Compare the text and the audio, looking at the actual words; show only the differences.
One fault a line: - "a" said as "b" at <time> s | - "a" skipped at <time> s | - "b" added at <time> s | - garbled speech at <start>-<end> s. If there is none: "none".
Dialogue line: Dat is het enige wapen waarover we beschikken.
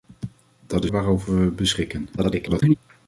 - "het enige wapen" skipped at 0.9 s
- garbled speech at 2.2-2.7 s